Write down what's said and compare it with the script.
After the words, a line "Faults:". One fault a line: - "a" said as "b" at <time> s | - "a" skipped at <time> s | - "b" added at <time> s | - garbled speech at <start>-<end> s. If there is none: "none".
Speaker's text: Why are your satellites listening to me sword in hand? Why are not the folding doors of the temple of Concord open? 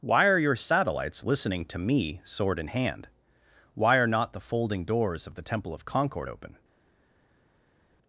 Why are your satellites listening to me sword in hand? Why are not the folding doors of the temple of Concord open?
Faults:
none